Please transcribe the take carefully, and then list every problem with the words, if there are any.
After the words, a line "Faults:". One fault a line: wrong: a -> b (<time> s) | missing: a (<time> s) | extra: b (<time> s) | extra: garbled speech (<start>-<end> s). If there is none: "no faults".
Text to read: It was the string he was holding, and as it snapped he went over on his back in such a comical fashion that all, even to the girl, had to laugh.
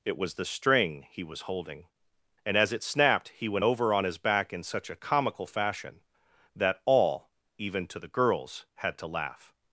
It was the string he was holding, and as it snapped he went over on his back in such a comical fashion that all, even to the girls, had to laugh.
Faults:
wrong: girl -> girls (8.1 s)